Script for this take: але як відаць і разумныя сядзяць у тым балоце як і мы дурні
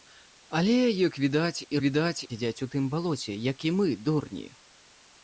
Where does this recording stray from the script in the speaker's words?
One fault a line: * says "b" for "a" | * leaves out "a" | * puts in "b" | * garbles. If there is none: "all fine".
* says "відаць" for "разумныя"